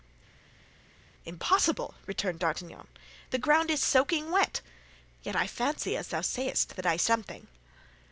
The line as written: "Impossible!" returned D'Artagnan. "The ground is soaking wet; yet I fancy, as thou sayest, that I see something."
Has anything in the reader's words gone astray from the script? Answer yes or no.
yes